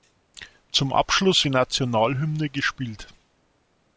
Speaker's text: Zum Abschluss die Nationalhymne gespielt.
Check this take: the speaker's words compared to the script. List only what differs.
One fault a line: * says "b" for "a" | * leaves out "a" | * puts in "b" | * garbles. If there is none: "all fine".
all fine